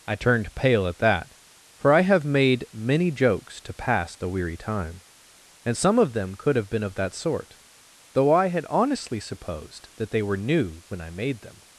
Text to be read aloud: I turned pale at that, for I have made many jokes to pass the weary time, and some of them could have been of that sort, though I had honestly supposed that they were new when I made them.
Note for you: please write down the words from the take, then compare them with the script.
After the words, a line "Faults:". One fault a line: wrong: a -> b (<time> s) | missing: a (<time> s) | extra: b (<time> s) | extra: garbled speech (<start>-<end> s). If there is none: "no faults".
I turned pale at that, for I have made many jokes to pass the weary time, and some of them could have been of that sort, though I had honestly supposed that they were new when I made them.
Faults:
no faults